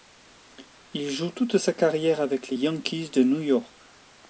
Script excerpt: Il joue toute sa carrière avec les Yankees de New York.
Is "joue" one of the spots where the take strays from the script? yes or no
no